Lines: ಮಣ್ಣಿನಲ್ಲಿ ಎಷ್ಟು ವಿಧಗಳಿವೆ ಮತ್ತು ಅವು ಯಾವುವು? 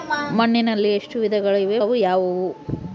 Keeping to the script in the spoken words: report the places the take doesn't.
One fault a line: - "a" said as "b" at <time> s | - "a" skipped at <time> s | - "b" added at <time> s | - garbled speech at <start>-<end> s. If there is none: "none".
- "ಮತ್ತು" skipped at 1.8 s